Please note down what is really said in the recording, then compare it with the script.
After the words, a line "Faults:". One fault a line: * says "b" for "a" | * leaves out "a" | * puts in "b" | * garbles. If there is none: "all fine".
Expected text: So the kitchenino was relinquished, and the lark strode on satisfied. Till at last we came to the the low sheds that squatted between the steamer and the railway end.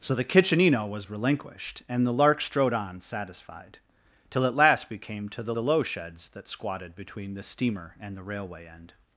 So the kitchenino was relinquished, and the lark strode on satisfied. Till at last we came to the the low sheds that squatted between the steamer and the railway end.
Faults:
all fine